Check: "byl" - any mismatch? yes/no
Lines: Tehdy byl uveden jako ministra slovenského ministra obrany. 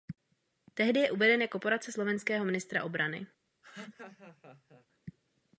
yes